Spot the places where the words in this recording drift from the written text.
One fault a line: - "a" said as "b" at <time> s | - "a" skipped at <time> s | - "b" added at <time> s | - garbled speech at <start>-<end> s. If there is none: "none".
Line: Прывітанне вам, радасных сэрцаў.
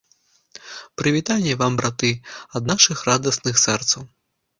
- "браты ад нашых" added at 1.8 s